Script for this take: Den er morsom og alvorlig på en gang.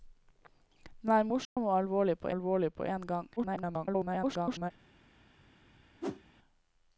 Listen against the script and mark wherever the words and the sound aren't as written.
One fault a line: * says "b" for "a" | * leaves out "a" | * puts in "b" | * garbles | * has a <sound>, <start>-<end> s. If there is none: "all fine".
* has a dropout, 1.4-1.6 s
* puts in "alvorlig på"
* garbles
* has a whoosh, 6.0-6.2 s